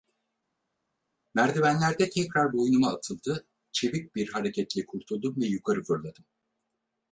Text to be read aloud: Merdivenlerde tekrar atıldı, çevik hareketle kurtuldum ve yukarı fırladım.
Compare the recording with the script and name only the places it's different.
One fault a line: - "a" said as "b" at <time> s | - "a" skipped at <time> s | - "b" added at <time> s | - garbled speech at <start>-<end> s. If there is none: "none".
- "boynuma" added at 2.5 s
- "bir" added at 4.2 s